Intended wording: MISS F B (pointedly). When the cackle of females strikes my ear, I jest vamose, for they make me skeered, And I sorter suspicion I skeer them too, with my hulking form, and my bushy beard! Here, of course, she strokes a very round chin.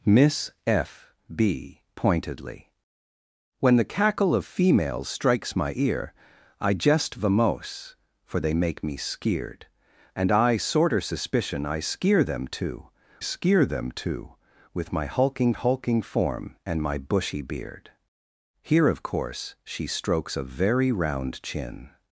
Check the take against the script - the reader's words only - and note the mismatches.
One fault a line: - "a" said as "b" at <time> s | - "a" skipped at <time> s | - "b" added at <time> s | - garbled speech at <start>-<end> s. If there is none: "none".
- "skeer them too" added at 13.2 s
- "hulking" added at 15.5 s